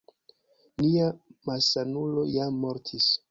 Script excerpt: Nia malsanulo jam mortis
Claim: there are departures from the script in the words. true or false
false